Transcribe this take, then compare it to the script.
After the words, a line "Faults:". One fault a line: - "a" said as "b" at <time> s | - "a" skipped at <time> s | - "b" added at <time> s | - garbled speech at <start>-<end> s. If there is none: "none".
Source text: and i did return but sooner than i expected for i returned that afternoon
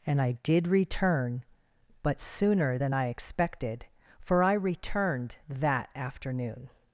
and i did return but sooner than i expected for i returned that afternoon
Faults:
none